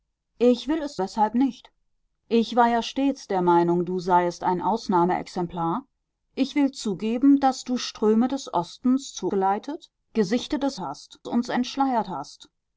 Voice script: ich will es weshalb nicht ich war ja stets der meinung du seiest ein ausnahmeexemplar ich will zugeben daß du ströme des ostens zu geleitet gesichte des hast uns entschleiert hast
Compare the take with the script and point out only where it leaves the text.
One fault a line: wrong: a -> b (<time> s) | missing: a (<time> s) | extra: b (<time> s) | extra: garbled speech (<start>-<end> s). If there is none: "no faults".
no faults